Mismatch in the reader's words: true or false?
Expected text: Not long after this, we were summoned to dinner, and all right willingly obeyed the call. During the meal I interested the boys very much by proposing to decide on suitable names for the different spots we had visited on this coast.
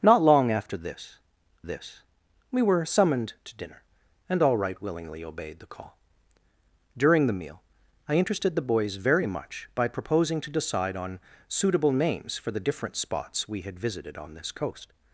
true